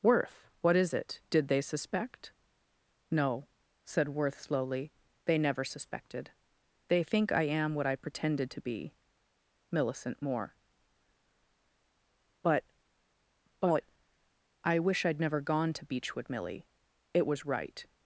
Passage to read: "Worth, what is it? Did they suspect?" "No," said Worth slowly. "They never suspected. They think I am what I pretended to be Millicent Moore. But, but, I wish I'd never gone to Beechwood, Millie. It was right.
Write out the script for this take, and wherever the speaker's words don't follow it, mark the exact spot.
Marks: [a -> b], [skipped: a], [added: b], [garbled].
"Worth, what is it? Did they suspect?" "No," said Worth slowly. "They never suspected. They think I am what I pretended to be Millicent Moore. But, but, I wish I'd never gone to Beechwood, Millie. It was right.